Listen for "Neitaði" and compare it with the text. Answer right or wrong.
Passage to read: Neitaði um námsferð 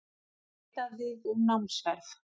right